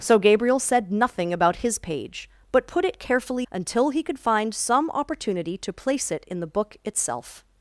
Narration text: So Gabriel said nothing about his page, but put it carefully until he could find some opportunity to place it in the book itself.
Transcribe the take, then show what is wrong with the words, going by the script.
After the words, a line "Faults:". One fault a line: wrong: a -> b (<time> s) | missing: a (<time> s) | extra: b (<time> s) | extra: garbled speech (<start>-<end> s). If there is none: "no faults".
So Gabriel said nothing about his page, but put it carefully until he could find some opportunity to place it in the book itself.
Faults:
no faults